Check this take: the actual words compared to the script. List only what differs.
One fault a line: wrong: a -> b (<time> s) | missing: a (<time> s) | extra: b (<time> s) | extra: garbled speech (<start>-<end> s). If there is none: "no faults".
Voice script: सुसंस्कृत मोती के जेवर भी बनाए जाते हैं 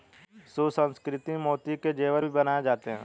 no faults